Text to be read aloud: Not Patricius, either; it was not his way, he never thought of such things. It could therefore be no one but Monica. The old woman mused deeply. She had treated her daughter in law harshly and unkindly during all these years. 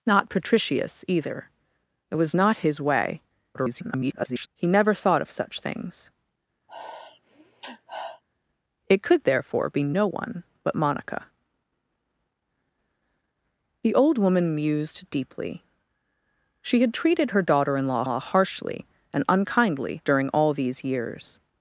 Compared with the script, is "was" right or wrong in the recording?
right